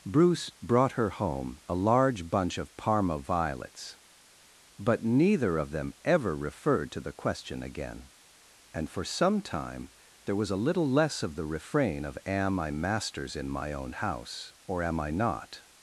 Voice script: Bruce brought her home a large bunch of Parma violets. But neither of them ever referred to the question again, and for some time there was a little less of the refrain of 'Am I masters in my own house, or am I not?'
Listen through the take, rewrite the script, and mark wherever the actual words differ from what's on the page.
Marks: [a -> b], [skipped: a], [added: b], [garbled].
Bruce brought her home a large bunch of Parma violets. But neither of them ever referred to the question again, and for some time there was a little less of the refrain of 'Am I masters in my own house, or am I not?'